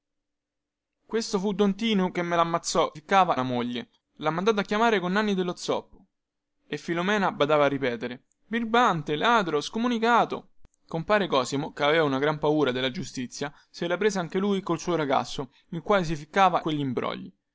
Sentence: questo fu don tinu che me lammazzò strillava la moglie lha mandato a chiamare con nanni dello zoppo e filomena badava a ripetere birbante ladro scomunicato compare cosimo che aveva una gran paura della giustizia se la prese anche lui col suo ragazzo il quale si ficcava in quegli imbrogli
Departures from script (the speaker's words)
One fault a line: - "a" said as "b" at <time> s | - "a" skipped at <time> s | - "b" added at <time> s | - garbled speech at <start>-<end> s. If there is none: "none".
- "strillava" said as "ficcava" at 2.9 s
- "in" skipped at 16.6 s